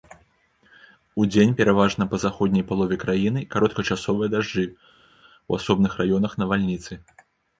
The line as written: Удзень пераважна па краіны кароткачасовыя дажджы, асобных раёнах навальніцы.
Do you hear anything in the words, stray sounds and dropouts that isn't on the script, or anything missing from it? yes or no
yes